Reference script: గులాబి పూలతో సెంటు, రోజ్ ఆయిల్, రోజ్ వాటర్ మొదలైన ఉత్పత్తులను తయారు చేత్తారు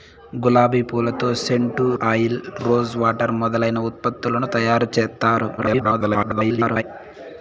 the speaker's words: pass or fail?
fail